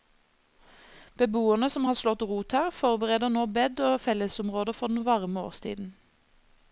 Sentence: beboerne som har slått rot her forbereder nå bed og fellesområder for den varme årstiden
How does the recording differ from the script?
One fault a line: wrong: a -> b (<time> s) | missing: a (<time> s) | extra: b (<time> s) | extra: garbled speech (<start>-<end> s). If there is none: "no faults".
no faults